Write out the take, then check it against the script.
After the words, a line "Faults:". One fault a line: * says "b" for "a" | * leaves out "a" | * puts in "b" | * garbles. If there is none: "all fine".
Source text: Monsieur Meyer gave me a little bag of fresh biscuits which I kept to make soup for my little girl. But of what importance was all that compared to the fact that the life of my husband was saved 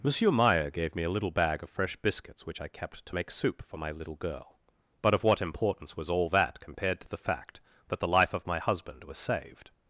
Monsieur Meyer gave me a little bag of fresh biscuits which I kept to make soup for my little girl. But of what importance was all that compared to the fact that the life of my husband was saved
Faults:
all fine